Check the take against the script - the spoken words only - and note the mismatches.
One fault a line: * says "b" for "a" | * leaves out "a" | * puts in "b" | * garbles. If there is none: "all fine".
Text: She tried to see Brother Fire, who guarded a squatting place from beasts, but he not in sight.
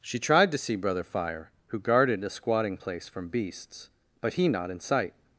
all fine